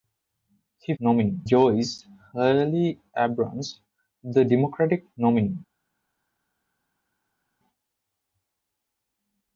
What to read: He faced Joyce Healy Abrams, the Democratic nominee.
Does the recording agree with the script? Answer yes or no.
no